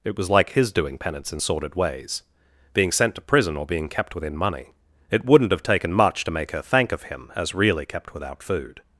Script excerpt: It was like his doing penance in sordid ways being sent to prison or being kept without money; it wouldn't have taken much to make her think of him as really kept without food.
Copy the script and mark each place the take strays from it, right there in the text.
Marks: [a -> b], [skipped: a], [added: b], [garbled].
It was like his doing penance in sordid ways being sent to prison or being kept [without -> within] money; it wouldn't have taken much to make her [think -> thank] of him as really kept without food.